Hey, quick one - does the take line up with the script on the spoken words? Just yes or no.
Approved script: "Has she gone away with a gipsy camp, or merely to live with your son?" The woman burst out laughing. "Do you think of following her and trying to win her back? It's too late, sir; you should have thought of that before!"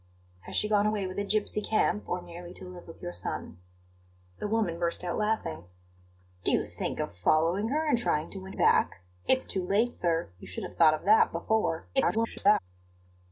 no